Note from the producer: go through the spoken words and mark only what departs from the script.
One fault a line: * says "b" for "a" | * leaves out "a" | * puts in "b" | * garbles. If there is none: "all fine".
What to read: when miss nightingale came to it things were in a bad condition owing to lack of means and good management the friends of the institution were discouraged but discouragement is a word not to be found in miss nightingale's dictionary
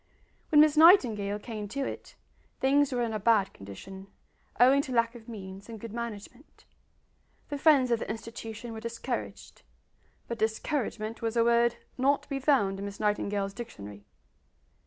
* says "was" for "is"